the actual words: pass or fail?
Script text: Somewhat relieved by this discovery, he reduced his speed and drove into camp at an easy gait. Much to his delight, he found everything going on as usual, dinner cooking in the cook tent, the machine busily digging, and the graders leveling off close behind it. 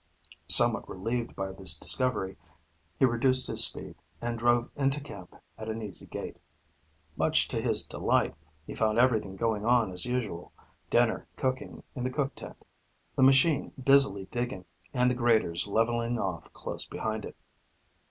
pass